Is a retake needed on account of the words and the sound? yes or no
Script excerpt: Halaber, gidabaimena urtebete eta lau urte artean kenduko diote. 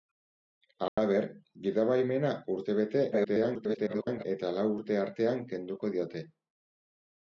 yes